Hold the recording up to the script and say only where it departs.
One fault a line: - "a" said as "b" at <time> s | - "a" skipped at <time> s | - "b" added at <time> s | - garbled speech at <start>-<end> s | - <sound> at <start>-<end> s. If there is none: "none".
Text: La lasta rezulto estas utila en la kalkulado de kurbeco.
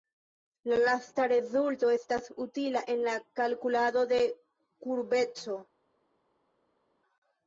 none